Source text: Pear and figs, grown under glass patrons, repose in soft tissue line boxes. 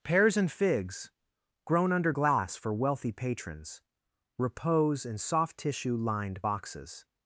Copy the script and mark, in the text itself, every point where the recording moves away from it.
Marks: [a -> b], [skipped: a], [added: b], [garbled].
[Pear -> Pears] and figs, grown under glass [added: for wealthy] patrons, repose in soft tissue [line -> lined] boxes.